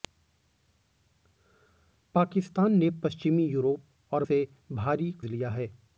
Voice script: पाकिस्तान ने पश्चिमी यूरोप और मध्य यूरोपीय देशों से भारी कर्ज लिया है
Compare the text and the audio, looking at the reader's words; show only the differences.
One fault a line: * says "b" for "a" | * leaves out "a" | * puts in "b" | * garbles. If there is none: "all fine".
* leaves out "मध्य यूरोपीय देशों"
* leaves out "कर्ज"